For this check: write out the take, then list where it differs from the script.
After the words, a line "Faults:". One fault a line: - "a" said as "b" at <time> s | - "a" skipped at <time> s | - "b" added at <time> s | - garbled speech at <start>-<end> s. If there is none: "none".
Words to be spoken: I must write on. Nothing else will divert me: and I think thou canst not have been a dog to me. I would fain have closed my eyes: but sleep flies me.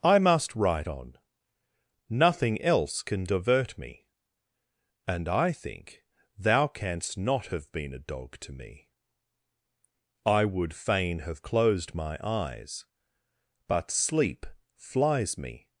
I must write on. Nothing else can divert me: and I think thou canst not have been a dog to me. I would fain have closed my eyes: but sleep flies me.
Faults:
- "will" said as "can" at 3.0 s